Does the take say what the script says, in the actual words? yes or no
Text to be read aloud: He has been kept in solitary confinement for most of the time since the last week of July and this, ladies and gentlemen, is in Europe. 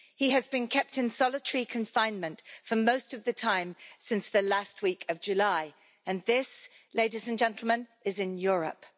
yes